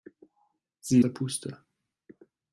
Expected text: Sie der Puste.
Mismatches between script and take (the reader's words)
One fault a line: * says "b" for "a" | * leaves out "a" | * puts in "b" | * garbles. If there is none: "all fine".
all fine